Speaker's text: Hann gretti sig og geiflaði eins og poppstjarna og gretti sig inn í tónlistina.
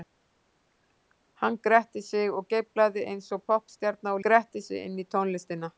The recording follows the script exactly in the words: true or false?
true